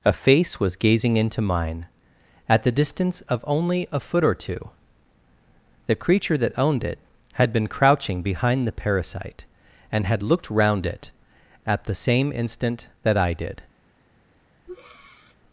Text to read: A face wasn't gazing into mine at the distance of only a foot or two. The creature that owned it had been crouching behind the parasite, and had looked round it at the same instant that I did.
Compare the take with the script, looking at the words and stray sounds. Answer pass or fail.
fail